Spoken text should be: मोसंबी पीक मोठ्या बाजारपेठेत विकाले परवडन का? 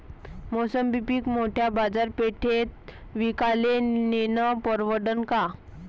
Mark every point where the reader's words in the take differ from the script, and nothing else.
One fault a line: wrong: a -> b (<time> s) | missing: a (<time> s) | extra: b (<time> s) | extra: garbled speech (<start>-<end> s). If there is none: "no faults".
extra: नेनं (3.8 s)